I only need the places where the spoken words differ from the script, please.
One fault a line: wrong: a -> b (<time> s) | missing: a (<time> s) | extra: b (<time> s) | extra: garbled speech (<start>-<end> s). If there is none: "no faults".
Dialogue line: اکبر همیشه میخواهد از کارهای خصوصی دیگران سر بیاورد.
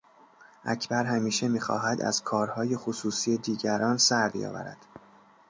no faults